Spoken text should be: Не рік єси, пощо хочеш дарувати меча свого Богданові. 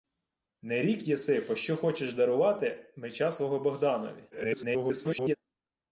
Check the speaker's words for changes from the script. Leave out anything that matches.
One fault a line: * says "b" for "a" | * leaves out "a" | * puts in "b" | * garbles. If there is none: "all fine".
* garbles